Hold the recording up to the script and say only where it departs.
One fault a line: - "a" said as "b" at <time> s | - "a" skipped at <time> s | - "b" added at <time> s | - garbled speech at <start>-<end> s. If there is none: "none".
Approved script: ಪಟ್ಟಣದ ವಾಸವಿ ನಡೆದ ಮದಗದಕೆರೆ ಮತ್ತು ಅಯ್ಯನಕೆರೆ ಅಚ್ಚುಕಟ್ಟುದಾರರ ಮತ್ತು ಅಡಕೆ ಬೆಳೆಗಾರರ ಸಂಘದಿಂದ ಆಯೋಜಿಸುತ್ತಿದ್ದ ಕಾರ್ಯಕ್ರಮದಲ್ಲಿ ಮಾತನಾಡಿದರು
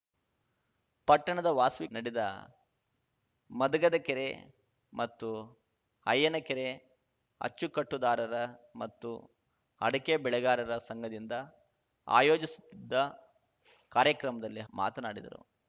none